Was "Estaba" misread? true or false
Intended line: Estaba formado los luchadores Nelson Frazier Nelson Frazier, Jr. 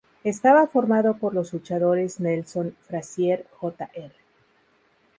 false